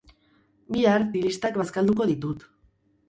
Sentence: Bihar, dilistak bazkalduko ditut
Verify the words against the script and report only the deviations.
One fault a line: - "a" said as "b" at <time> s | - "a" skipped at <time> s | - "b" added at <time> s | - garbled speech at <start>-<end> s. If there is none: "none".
none